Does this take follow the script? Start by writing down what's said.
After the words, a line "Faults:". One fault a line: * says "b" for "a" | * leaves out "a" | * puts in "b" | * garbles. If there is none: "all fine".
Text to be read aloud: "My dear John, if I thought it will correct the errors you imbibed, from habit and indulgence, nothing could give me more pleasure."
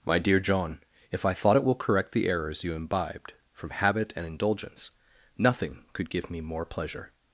"My dear John, if I thought it will correct the errors you imbibed, from habit and indulgence, nothing could give me more pleasure."
Faults:
all fine